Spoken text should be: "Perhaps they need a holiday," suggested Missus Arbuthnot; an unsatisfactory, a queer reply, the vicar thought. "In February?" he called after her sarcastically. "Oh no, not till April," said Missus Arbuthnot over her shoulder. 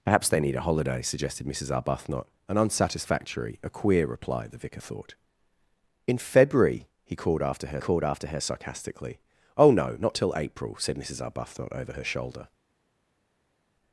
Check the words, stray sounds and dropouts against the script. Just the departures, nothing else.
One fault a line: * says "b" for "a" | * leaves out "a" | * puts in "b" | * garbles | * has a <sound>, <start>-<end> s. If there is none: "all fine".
* puts in "called after her"